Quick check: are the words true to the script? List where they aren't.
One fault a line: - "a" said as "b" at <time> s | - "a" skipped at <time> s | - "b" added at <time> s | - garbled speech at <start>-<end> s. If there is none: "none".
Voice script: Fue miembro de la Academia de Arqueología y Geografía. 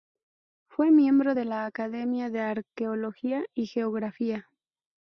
none